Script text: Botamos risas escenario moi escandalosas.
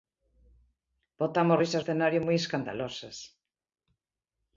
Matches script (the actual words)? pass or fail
pass